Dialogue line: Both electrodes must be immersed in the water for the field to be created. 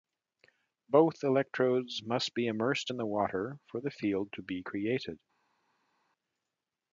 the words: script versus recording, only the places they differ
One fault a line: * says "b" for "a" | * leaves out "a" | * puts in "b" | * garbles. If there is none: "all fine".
all fine